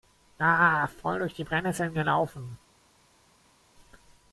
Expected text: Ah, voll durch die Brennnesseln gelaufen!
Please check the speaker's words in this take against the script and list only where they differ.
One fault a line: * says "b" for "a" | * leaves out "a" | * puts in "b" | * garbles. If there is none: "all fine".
all fine